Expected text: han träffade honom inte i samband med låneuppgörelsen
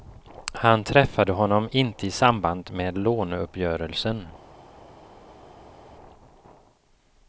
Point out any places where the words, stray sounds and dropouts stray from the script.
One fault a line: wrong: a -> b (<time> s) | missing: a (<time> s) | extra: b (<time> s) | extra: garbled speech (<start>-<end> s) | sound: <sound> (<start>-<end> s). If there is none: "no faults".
no faults